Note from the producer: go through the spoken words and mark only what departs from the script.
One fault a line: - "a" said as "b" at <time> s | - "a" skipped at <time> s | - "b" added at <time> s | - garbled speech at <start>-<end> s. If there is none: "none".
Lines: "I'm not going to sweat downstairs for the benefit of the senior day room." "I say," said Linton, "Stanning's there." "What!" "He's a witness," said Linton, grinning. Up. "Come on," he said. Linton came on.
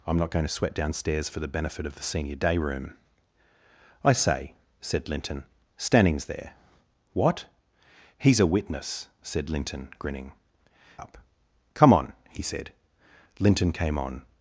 none